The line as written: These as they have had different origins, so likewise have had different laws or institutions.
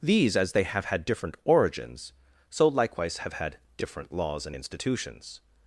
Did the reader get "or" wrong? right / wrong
wrong